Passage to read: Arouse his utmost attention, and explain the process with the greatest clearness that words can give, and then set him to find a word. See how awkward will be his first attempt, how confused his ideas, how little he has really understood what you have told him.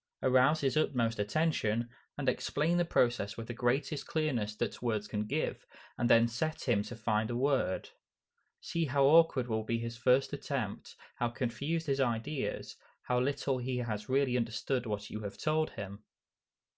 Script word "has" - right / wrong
right